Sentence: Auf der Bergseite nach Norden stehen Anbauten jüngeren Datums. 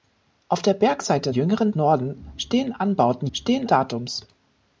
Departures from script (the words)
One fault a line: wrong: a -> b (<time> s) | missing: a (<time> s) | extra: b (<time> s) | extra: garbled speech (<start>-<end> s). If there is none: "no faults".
wrong: nach -> jüngeren (1.3 s)
wrong: jüngeren -> stehen (3.3 s)